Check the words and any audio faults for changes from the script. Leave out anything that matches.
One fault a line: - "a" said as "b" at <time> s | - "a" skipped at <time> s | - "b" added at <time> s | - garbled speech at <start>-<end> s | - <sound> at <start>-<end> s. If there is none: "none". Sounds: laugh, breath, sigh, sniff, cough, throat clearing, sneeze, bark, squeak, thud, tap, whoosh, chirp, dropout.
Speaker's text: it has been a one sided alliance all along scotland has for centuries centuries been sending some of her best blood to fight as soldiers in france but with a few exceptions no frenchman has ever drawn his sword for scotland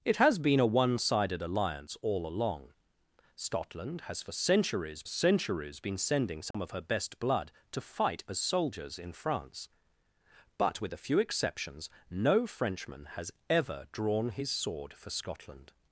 - dropout at 6.5-6.5 s